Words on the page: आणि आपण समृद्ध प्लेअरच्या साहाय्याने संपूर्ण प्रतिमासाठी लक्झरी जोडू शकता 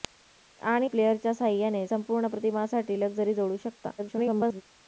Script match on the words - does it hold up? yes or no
no